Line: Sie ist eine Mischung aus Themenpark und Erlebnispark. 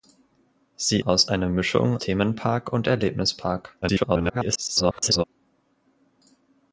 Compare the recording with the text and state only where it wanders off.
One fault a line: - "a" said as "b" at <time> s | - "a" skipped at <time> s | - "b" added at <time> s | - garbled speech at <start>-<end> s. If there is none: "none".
- "ist" said as "aus" at 1.0 s
- "aus" skipped at 2.0 s
- garbled speech at 3.8-5.2 s